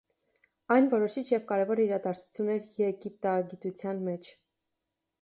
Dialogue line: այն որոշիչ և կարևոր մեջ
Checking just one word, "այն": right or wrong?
right